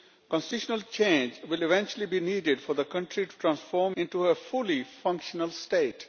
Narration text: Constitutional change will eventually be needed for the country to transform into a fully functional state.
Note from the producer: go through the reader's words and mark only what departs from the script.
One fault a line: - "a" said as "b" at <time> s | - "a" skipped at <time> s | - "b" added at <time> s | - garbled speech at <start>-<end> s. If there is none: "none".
none